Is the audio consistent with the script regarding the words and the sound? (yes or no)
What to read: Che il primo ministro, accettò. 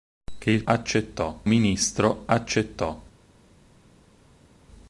no